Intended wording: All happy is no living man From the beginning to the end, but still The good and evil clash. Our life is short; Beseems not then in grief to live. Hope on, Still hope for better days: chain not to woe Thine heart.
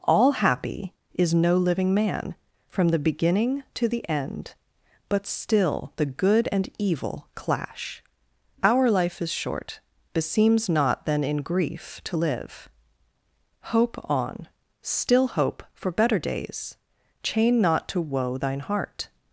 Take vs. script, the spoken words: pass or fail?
pass